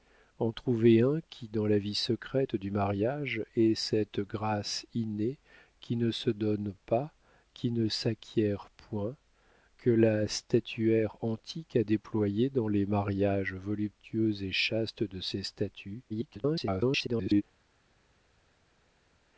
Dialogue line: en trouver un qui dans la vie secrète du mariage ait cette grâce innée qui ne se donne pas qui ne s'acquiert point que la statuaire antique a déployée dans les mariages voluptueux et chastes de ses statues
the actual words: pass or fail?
fail